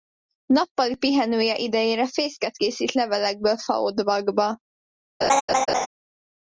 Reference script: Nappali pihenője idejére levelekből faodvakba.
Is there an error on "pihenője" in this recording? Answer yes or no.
no